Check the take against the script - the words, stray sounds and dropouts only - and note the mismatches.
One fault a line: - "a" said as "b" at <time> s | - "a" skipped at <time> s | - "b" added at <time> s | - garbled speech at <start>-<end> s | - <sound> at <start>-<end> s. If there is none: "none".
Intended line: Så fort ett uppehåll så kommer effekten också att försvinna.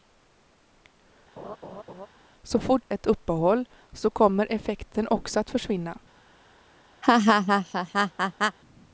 - laugh at 1.4-2.1 s
- laugh at 7.0-8.6 s